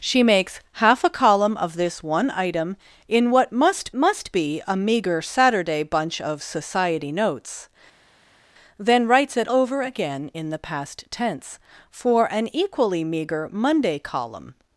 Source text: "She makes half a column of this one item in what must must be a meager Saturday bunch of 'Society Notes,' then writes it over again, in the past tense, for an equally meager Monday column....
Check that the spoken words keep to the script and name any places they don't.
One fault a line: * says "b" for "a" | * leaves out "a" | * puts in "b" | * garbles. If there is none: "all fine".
all fine